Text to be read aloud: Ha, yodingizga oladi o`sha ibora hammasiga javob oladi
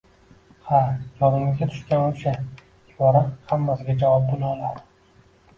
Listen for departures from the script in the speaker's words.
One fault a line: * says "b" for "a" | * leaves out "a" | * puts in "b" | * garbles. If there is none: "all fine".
* says "tushgan" for "oladi"
* puts in "bo`la"